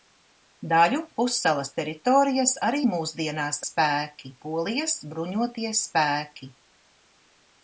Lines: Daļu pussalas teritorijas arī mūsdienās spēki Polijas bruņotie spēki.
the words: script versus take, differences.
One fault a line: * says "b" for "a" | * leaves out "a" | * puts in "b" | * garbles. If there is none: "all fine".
all fine